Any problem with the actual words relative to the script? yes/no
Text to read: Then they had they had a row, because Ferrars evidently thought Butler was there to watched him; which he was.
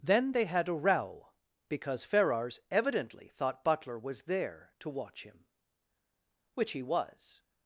yes